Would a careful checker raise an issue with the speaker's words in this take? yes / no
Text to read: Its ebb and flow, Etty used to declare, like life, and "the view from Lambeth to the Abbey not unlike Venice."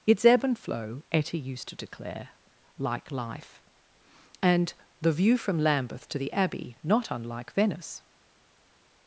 no